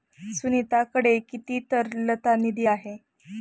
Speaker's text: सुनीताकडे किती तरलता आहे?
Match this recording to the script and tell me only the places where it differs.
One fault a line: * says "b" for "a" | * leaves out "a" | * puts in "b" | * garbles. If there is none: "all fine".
* puts in "निधी"